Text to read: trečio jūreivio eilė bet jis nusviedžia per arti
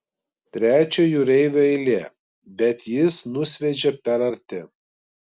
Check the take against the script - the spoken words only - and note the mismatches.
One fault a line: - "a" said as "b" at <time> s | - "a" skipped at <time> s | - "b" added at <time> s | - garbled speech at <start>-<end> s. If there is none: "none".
none